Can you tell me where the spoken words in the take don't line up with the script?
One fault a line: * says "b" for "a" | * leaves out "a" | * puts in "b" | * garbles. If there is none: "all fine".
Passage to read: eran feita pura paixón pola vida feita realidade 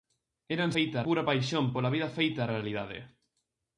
all fine